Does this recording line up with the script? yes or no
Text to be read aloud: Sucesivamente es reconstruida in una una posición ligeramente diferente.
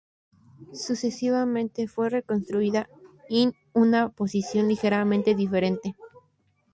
no